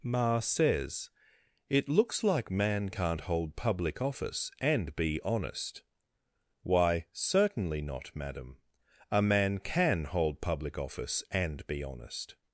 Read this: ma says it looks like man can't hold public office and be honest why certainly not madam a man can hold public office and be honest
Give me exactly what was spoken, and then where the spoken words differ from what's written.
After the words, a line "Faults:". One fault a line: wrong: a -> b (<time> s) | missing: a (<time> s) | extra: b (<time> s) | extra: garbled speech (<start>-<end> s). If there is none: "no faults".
ma says it looks like man can't hold public office and be honest why certainly not madam a man can hold public office and be honest
Faults:
no faults